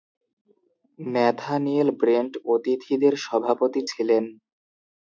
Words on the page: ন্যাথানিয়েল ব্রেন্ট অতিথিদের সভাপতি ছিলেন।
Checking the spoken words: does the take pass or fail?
pass